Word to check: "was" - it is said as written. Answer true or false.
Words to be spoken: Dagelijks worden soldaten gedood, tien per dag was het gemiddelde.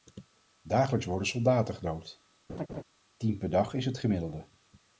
false